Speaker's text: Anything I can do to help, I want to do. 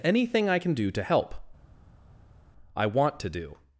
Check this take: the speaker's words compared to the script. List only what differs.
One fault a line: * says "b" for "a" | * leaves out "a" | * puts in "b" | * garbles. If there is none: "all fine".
all fine